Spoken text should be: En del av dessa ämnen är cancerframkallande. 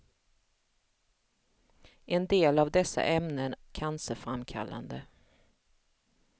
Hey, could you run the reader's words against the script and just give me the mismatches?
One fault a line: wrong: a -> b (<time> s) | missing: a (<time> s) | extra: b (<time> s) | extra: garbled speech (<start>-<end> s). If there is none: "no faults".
missing: är (3.5 s)